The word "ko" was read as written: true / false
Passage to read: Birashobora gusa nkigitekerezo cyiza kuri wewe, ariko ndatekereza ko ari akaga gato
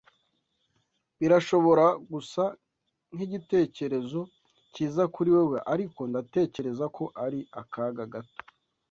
true